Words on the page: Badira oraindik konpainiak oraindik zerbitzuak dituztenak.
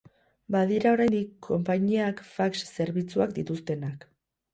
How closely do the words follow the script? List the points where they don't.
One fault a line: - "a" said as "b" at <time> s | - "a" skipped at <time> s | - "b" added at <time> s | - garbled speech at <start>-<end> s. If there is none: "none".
- "oraindik" said as "fax" at 2.3 s